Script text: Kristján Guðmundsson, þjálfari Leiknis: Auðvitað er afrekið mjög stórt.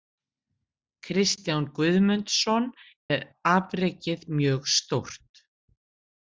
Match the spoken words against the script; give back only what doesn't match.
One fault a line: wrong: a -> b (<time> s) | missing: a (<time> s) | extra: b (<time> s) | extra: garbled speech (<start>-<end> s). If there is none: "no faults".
missing: þjálfari Leiknis Auðvitað (2.6 s)